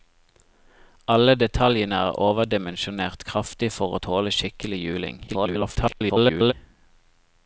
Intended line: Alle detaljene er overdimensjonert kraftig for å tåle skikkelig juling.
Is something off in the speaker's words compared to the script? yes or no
yes